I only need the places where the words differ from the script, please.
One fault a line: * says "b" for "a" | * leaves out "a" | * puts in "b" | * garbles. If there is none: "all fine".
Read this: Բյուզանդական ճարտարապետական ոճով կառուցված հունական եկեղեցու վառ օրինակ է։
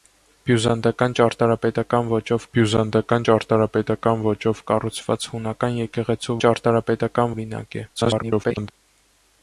* puts in "բյուզանդական ճարտարապետական ոճով"
* says "ճարտարապետական" for "վառ"
* garbles